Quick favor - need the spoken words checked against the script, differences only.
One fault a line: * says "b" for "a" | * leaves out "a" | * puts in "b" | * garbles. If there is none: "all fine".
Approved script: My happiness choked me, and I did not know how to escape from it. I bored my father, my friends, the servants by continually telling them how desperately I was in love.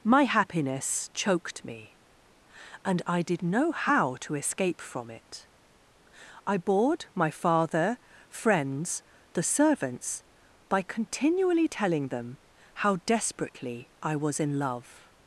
* leaves out "not"
* leaves out "my"